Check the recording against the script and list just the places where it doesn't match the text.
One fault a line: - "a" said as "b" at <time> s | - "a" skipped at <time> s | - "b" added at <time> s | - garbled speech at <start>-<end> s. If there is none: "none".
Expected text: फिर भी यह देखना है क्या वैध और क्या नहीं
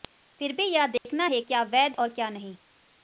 none